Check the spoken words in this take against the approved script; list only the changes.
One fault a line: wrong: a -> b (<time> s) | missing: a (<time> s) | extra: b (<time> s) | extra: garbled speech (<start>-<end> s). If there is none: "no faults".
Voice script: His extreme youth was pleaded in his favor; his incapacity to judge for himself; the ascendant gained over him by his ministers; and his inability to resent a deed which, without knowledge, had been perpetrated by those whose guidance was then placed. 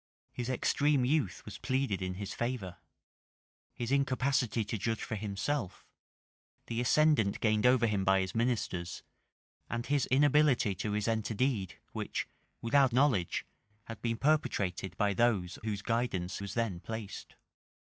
no faults